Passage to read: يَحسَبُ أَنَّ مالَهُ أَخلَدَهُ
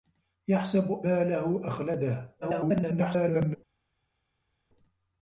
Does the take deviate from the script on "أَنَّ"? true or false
true